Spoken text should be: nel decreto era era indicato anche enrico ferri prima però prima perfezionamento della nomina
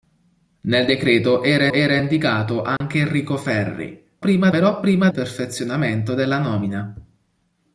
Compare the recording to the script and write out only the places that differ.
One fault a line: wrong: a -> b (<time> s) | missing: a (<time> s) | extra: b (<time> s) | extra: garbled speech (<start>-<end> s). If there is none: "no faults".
no faults